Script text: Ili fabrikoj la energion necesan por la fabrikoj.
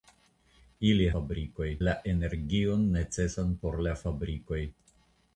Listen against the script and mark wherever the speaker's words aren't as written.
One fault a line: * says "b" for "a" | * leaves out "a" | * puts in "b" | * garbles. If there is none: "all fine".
all fine